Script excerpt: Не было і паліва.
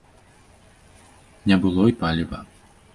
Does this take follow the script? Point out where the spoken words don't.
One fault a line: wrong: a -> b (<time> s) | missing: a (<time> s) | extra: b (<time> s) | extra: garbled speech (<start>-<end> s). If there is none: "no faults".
no faults